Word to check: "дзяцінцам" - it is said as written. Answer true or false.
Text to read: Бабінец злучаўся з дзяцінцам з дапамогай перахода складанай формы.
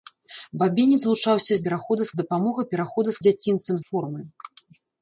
false